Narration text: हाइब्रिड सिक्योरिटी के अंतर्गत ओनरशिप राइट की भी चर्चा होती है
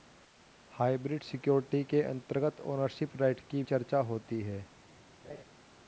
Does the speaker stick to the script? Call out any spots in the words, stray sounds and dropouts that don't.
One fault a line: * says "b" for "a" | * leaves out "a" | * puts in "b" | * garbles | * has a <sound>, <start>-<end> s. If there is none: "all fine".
* leaves out "भी"
* has a laugh, 5.2-5.4 s